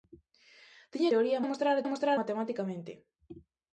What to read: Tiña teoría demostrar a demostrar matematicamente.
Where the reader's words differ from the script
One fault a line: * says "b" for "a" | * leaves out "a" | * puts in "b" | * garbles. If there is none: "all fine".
all fine